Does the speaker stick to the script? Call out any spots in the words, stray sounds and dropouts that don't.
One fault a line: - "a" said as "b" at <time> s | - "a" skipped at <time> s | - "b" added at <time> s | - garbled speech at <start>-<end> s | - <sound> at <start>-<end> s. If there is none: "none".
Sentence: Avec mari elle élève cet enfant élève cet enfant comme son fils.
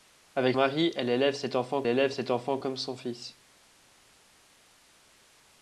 none